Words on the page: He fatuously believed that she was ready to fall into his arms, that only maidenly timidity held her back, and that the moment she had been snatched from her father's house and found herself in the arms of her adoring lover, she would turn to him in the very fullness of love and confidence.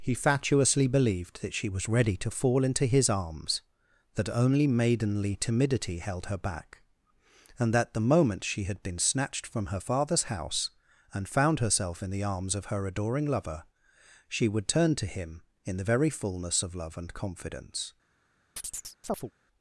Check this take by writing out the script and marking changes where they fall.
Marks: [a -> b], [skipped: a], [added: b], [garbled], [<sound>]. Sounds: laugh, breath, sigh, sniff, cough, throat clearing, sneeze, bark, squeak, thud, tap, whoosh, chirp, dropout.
He fatuously believed that she was ready to fall into his arms, that only maidenly timidity held her back, and that the moment she had been snatched from her father's house and found herself in the arms of her adoring lover, she would turn to him in the very fullness of love and confidence. [chirp]